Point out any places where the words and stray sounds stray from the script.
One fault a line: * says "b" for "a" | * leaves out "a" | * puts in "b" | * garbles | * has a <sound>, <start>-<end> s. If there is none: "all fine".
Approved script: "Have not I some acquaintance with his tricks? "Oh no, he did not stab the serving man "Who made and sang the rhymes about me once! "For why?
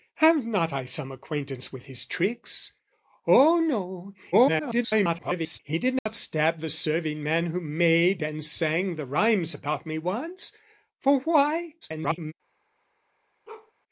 * garbles
* has a dropout, 6.0-6.1 s
* garbles
* has a bark, 13.5-13.7 s